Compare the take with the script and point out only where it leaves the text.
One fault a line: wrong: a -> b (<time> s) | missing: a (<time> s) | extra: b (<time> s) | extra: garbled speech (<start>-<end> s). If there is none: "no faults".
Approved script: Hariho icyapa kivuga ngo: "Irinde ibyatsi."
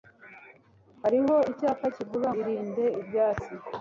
missing: ngo (2.3 s)